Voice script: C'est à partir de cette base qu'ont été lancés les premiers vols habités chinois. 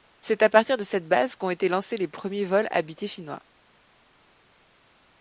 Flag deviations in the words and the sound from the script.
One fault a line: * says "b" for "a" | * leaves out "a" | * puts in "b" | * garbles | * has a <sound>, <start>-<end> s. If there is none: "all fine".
all fine